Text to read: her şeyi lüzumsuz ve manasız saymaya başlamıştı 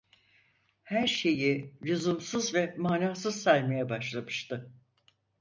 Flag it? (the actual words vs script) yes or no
no